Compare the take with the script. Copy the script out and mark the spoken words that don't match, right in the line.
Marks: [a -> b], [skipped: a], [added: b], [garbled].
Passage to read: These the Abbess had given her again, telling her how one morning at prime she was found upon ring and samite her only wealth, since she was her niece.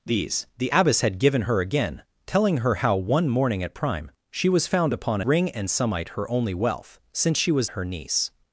These the Abbess had given her again, telling her how one morning at prime she was found upon ring and samite her only wealth, since she was her niece.